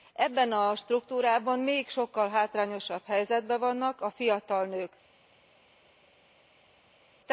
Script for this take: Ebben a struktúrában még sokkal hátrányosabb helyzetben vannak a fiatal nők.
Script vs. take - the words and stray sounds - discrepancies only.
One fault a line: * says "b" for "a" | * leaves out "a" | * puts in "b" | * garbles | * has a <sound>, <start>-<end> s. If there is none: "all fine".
all fine